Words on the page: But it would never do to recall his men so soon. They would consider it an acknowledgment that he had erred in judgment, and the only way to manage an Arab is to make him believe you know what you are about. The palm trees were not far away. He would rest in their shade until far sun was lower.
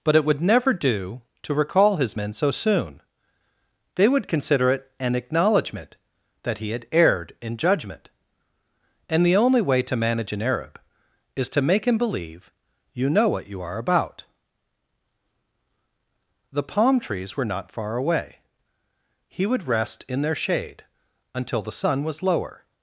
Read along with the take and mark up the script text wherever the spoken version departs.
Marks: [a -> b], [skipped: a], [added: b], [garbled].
But it would never do to recall his men so soon. They would consider it an acknowledgment that he had erred in judgment, and the only way to manage an Arab is to make him believe you know what you are about. The palm trees were not far away. He would rest in their shade until [far -> the] sun was lower.